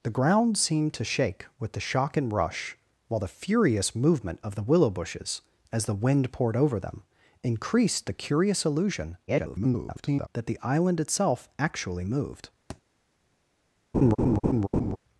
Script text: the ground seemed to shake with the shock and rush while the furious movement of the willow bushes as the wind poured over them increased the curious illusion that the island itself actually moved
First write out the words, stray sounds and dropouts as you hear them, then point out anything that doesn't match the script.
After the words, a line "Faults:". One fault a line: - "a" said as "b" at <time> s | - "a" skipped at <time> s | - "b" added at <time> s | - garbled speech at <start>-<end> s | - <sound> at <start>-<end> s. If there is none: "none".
the ground seemed to shake with the shock and rush while the furious movement of the willow bushes as the wind poured over them increased the curious illusion [garbled] that the island itself actually moved
Faults:
- garbled speech at 9.3-10.3 s
- thud at 12.7-12.8 s
- laugh at 13.9-15.0 s